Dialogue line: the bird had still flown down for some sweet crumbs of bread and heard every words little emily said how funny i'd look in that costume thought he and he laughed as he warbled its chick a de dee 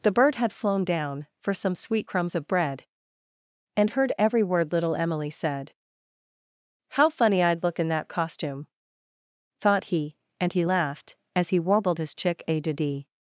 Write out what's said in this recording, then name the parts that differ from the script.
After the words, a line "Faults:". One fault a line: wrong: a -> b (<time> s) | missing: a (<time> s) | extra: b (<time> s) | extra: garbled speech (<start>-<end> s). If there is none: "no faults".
the bird had flown down for some sweet crumbs of bread and heard every word little emily said how funny i'd look in that costume thought he and he laughed as he warbled his chick a de dee
Faults:
missing: still (0.5 s)
wrong: words -> word (4.4 s)
wrong: its -> his (12.0 s)